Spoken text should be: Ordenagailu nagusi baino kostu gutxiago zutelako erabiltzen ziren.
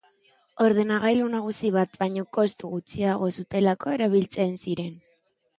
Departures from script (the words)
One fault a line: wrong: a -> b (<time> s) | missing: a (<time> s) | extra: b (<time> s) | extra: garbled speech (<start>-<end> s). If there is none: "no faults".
extra: bat (1.8 s)